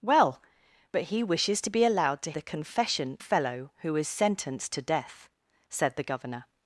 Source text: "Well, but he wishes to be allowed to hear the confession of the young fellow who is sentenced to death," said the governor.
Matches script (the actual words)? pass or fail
fail